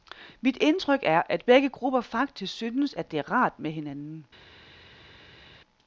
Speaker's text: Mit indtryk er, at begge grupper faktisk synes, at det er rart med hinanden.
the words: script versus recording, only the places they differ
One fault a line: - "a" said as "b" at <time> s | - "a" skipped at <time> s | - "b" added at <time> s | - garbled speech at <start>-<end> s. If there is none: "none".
none